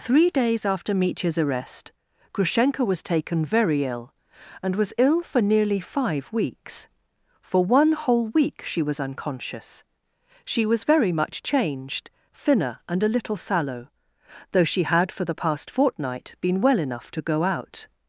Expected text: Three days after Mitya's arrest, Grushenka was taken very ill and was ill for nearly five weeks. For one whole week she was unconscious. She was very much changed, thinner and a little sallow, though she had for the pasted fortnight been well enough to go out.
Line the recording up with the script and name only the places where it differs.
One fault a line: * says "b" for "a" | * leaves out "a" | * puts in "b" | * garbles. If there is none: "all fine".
* says "past" for "pasted"